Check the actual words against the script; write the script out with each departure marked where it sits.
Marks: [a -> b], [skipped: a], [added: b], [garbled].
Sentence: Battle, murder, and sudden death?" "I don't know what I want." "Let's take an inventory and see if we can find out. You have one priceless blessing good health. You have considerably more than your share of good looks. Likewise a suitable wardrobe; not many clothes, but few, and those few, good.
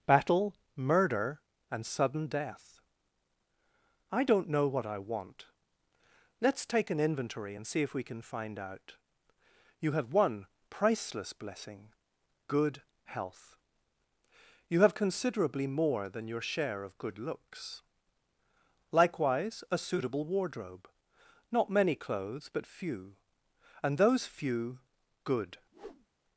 Battle, murder, and sudden death?" "I don't know what I want." "Let's take an inventory and see if we can find out. You have one priceless blessing good health. You have considerably more than your share of good looks. Likewise a suitable wardrobe; not many clothes, but few, and those few, good.